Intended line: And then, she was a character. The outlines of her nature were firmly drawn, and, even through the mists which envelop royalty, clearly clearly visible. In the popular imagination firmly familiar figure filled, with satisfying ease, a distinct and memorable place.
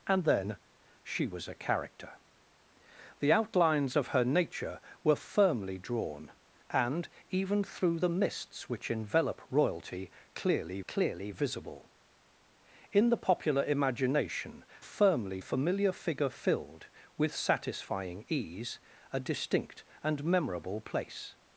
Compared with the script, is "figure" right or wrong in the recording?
right